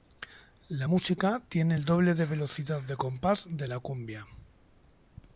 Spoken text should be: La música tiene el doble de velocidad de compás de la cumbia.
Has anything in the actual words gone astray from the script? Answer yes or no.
no